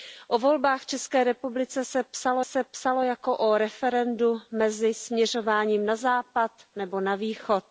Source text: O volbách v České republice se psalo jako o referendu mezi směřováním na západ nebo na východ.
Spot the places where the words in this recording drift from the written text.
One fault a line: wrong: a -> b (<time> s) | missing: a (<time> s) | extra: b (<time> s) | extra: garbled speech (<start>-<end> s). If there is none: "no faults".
extra: se psalo (2.4 s)